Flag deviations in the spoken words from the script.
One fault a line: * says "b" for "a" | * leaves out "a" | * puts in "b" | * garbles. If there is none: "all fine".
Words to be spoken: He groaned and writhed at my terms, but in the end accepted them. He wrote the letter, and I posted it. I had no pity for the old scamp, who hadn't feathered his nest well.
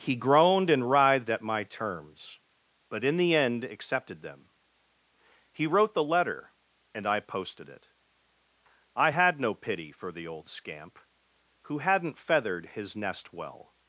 all fine